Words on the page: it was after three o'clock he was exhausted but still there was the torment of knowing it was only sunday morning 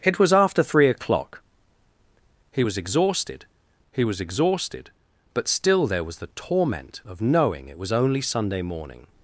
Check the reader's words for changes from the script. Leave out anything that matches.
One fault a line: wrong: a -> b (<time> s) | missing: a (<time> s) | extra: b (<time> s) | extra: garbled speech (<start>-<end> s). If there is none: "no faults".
extra: he was exhausted (3.9 s)